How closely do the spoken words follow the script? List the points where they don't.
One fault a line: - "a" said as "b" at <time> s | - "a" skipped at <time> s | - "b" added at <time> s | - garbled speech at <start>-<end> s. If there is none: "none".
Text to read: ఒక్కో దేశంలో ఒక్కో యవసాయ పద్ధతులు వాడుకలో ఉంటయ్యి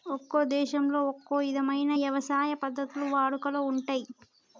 - "ఇధమైన" added at 1.5 s